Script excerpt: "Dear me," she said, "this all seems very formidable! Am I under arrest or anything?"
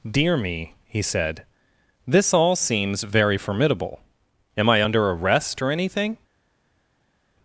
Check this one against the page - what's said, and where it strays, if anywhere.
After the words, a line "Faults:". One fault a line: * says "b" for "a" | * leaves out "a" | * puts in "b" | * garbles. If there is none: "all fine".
"Dear me," he said, "this all seems very formidable! Am I under arrest or anything?"
Faults:
* says "he" for "she"